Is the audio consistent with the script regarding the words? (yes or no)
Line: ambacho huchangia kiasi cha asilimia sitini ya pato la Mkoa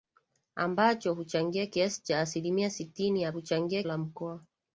no